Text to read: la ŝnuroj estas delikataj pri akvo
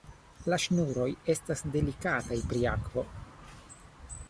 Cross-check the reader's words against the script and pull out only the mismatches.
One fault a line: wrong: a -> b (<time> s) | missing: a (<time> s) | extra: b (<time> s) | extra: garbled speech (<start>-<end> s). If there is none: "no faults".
no faults